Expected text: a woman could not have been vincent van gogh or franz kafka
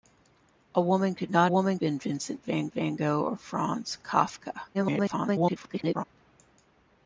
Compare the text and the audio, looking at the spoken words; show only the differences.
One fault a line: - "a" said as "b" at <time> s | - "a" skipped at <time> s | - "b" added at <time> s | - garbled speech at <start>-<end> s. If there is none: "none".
- "have" said as "woman" at 1.5 s
- "van" added at 2.7 s
- garbled speech at 4.7-6.0 s